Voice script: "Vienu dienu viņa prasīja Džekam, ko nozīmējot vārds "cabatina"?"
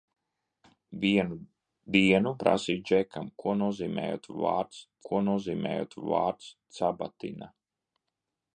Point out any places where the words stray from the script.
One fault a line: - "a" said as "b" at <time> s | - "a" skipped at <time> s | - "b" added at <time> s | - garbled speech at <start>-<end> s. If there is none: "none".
- "viņa" skipped at 2.3 s
- "ko nozīmējot vārds" added at 5.1 s